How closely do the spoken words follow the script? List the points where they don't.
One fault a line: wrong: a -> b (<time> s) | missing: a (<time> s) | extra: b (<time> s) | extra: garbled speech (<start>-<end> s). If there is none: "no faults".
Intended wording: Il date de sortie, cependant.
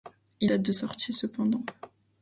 no faults